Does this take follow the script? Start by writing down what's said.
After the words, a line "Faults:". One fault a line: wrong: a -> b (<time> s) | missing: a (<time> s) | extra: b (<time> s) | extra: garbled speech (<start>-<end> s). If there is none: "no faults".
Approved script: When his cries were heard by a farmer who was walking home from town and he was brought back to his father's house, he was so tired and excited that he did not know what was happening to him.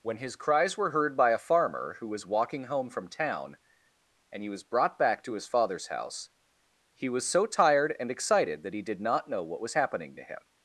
When his cries were heard by a farmer who was walking home from town and he was brought back to his father's house, he was so tired and excited that he did not know what was happening to him.
Faults:
no faults